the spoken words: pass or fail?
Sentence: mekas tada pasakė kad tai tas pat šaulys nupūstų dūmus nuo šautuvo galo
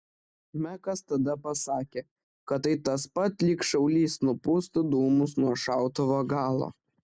fail